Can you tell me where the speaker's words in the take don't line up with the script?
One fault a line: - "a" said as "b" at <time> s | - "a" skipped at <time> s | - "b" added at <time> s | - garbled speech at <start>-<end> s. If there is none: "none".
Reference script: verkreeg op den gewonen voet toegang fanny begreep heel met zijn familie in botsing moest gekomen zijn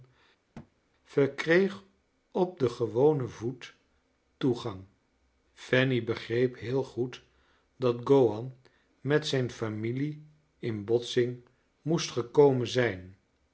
- "goed dat gowan" added at 6.8 s